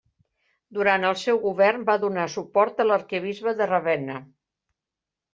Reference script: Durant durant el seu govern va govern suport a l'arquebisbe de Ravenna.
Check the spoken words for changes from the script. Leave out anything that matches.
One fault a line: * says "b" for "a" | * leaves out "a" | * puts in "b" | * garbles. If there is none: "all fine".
* leaves out "durant"
* says "donar" for "govern"